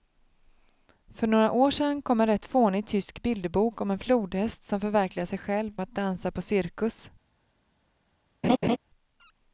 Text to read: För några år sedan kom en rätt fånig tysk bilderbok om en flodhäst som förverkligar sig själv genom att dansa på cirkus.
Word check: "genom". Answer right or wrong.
wrong